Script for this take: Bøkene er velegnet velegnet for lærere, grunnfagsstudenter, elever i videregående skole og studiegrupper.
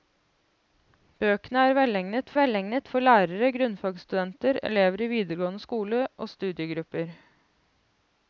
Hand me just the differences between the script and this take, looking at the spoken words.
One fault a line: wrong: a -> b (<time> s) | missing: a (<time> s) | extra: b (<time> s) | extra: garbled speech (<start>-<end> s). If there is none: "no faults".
no faults